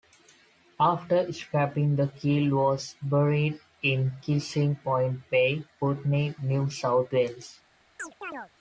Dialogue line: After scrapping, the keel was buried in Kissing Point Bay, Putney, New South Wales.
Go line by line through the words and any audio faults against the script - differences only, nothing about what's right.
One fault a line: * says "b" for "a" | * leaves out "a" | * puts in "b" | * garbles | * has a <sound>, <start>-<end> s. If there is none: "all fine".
* has a chirp, 8.0-8.5 s